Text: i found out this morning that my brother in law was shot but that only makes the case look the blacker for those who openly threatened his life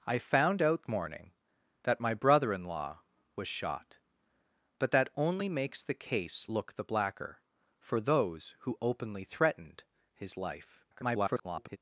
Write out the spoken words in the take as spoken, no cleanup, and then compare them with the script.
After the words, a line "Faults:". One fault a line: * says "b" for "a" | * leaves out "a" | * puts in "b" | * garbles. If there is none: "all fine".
i found out morning that my brother in law was shot but that only makes the case look the blacker for those who openly threatened his life [garbled]
Faults:
* leaves out "this"
* garbles